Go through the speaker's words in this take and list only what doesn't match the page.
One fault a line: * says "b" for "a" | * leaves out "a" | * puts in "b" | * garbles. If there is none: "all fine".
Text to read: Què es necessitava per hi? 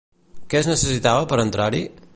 * puts in "entrar"